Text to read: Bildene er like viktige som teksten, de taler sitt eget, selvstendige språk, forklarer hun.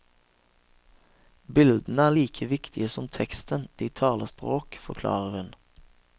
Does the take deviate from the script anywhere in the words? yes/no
yes